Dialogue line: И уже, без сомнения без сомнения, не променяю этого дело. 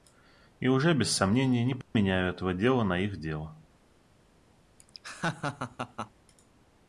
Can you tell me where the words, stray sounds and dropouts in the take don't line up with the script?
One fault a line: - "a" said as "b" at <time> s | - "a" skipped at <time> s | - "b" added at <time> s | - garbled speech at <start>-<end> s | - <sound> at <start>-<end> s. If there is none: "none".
- "без сомнения" skipped at 1.6 s
- dropout at 1.8-1.9 s
- "дела на их" added at 2.5 s
- laugh at 4.8-6.1 s